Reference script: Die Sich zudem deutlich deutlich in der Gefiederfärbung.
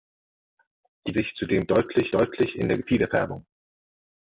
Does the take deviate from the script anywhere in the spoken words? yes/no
no